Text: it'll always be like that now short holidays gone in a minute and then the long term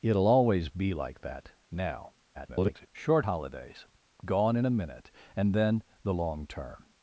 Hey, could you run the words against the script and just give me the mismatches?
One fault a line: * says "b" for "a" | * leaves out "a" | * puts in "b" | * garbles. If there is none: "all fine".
* garbles